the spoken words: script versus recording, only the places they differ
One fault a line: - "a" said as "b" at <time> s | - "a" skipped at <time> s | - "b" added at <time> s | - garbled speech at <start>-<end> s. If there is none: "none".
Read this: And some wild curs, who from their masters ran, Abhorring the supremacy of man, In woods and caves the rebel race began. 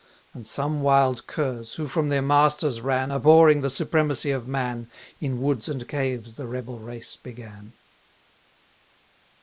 none